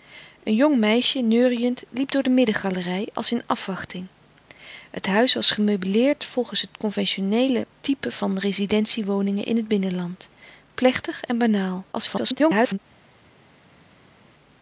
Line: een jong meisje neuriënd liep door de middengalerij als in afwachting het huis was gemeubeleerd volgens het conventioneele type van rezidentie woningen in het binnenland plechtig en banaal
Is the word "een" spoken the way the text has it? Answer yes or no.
yes